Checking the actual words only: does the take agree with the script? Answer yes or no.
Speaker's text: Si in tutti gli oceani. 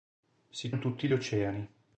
yes